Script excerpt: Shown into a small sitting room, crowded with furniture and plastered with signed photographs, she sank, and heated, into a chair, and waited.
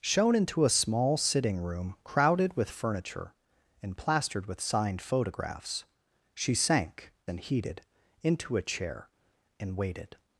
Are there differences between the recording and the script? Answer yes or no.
no